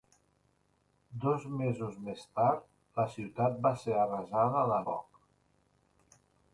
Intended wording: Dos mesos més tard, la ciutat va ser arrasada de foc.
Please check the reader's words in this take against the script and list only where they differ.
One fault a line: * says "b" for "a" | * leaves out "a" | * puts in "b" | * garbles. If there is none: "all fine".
all fine